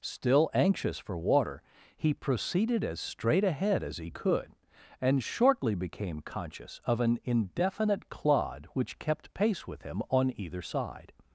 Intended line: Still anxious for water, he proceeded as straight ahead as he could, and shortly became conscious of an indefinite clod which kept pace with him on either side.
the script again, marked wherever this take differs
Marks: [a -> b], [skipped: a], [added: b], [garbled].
Still anxious for water, he proceeded as straight ahead as he could, and shortly became conscious of an indefinite clod which kept pace with him on either side.